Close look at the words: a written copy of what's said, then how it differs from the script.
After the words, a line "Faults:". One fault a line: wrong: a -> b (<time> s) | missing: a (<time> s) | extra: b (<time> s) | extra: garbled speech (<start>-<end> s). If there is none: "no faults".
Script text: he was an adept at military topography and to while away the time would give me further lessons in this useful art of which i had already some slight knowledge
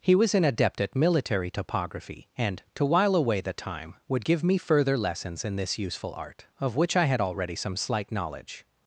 he was an adept at military topography and to while away the time would give me further lessons in this useful art of which i had already some slight knowledge
Faults:
no faults